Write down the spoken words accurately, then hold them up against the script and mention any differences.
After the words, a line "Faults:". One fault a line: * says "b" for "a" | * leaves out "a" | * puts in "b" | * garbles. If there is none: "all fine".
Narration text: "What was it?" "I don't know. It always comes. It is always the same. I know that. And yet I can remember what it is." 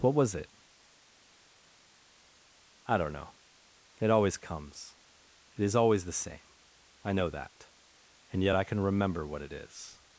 "What was it?" "I don't know. It always comes. It is always the same. I know that. And yet I can remember what it is."
Faults:
all fine